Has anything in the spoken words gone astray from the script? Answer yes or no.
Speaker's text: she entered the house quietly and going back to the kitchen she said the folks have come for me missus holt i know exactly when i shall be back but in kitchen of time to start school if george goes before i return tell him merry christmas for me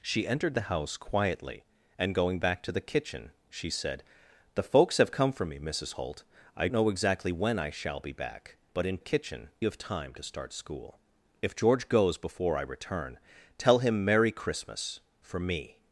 no